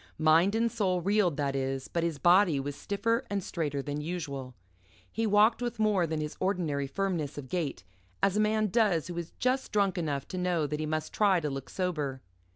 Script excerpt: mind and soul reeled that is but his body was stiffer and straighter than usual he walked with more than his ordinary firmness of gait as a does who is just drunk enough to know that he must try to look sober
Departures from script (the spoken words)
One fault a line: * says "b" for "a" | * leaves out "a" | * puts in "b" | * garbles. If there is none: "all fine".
* puts in "man"